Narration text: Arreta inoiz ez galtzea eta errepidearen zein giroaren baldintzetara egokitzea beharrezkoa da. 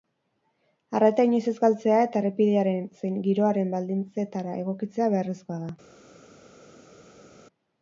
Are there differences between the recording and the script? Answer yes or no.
no